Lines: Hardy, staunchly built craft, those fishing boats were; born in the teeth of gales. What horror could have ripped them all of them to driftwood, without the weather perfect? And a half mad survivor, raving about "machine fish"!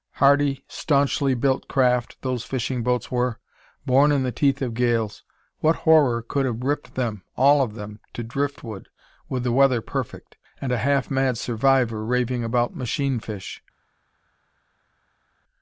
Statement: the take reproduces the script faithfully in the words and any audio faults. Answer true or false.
false